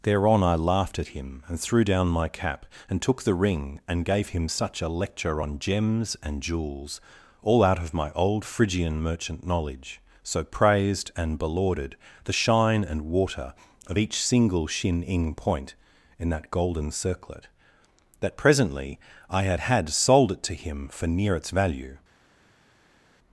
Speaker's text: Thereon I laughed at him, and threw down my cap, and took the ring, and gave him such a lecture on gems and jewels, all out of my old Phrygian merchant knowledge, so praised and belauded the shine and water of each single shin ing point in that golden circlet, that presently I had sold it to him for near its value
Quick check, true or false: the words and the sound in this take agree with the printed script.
false